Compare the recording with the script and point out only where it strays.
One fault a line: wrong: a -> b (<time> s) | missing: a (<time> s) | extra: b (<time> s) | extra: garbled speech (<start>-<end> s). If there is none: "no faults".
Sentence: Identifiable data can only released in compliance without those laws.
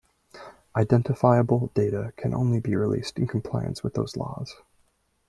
extra: be (2.6 s)
wrong: without -> with (3.8 s)